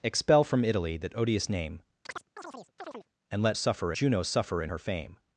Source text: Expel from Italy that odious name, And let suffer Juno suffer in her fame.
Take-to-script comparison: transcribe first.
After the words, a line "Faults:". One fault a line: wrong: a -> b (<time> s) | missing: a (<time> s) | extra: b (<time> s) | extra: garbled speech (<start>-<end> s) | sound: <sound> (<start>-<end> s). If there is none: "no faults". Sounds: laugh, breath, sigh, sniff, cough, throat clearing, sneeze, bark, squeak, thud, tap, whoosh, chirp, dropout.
Expel from Italy that odious name, And let suffer Juno suffer in her fame.
Faults:
sound: chirp (2.1-3.1 s)